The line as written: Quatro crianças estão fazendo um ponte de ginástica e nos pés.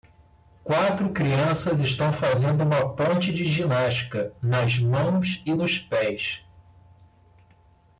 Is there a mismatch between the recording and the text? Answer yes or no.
yes